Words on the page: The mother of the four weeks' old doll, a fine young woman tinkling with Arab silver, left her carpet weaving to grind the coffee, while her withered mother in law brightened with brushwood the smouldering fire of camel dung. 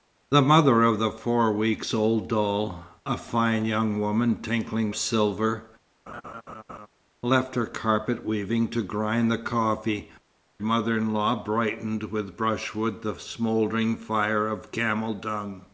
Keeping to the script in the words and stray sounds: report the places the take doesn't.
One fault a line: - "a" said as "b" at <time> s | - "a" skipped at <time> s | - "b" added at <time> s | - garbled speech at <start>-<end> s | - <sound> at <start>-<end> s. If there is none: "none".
- "with Arab" skipped at 4.9 s
- laugh at 6.1-6.9 s
- "while her withered" skipped at 10.1 s